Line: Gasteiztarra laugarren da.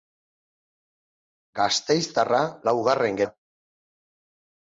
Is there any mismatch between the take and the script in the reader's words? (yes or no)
no